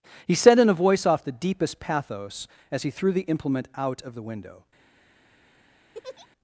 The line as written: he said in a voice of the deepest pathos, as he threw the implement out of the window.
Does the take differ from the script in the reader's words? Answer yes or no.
yes